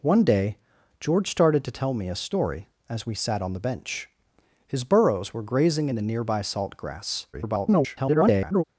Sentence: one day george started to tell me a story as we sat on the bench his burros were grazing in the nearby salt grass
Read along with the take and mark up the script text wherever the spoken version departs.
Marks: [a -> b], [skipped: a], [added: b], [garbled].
one day george started to tell me a story as we sat on the bench his burros were grazing in the nearby salt grass [garbled]